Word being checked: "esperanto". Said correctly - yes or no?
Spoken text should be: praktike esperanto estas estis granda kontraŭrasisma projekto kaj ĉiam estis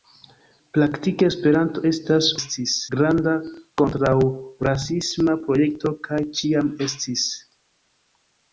yes